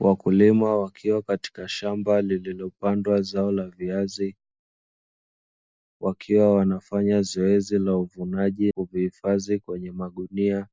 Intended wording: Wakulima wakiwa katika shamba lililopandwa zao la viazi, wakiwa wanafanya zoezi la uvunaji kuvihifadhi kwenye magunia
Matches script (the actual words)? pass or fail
pass